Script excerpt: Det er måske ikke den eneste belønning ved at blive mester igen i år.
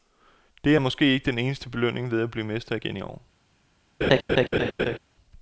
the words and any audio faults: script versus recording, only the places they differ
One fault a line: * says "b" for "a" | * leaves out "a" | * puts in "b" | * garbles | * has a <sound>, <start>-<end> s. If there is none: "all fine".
* has a laugh, 4.0-5.0 s